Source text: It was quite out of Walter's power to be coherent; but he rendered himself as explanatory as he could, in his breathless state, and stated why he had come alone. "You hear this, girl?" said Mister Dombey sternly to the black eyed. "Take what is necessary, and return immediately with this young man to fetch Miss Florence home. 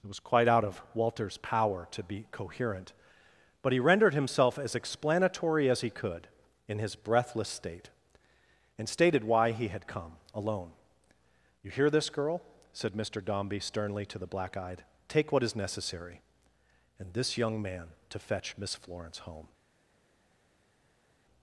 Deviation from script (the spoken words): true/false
true